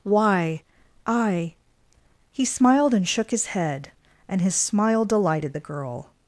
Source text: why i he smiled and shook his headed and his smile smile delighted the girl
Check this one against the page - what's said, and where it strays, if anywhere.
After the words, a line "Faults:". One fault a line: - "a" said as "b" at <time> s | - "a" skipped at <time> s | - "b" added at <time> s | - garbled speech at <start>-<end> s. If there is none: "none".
why i he smiled and shook his head and his smile delighted the girl
Faults:
- "headed" said as "head" at 3.5 s
- "smile" skipped at 5.0 s